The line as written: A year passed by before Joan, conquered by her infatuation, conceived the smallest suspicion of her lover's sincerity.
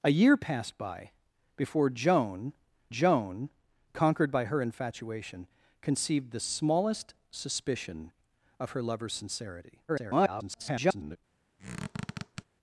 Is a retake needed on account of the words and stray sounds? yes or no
yes